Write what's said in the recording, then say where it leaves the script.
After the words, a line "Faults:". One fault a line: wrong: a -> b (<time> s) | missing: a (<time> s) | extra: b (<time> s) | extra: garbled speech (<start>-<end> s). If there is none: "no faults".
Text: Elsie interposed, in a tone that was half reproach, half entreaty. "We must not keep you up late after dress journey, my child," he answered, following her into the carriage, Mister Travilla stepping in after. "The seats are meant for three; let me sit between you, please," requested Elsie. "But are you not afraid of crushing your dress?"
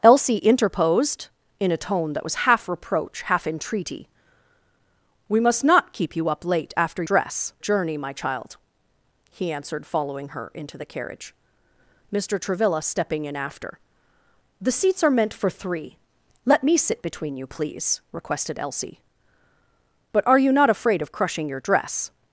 Elsie interposed, in a tone that was half reproach, half entreaty. "We must not keep you up late after dress journey, my child," he answered, following her into the carriage, Mister Travilla stepping in after. "The seats are meant for three; let me sit between you, please," requested Elsie. "But are you not afraid of crushing your dress?"
Faults:
no faults